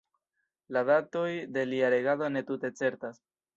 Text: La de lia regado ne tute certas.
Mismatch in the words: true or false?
true